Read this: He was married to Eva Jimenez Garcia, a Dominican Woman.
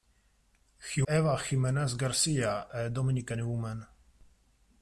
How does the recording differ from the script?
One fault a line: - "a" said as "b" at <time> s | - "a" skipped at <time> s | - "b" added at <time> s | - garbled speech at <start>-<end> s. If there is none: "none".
- "was married to" skipped at 1.0 s